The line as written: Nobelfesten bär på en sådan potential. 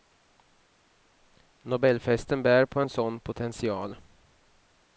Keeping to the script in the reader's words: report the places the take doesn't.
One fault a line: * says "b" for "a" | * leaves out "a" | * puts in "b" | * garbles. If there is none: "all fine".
all fine